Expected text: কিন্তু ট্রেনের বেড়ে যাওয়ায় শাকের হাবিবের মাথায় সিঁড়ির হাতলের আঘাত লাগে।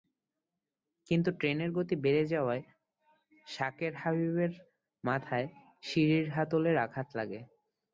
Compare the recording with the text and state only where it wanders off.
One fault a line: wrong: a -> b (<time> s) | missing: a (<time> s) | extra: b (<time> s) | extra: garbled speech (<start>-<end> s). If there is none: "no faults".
extra: গতি (1.8 s)